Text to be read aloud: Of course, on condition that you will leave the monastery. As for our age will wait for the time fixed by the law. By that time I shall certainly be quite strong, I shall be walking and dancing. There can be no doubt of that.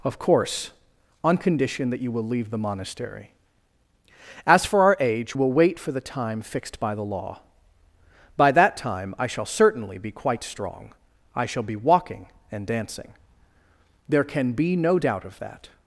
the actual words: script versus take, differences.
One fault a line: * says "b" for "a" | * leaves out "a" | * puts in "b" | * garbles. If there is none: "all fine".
all fine